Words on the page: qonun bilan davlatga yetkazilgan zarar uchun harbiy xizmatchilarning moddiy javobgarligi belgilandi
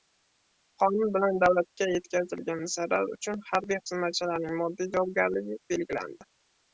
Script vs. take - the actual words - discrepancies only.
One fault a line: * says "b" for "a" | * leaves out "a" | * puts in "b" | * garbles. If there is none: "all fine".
all fine